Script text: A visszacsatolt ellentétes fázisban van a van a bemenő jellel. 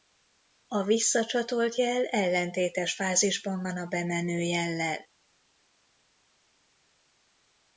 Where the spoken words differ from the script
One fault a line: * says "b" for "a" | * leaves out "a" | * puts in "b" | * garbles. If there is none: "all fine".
* puts in "jel"
* leaves out "van a"